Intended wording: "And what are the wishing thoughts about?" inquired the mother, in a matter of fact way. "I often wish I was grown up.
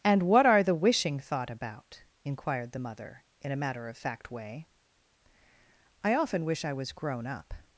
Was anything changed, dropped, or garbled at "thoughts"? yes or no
yes